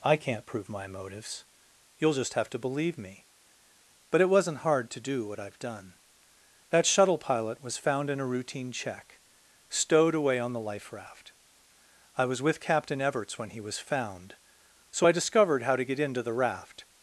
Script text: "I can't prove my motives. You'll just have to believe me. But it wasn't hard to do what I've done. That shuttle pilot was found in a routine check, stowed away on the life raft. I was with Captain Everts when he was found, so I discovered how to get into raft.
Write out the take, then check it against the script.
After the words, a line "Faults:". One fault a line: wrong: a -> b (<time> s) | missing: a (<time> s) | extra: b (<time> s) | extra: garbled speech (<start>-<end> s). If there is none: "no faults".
"I can't prove my motives. You'll just have to believe me. But it wasn't hard to do what I've done. That shuttle pilot was found in a routine check, stowed away on the life raft. I was with Captain Everts when he was found, so I discovered how to get into the raft.
Faults:
extra: the (16.2 s)